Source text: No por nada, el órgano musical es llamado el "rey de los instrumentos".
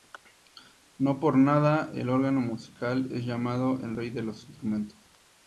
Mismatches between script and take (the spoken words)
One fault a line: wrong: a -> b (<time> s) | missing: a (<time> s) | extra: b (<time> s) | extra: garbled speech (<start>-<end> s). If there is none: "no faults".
no faults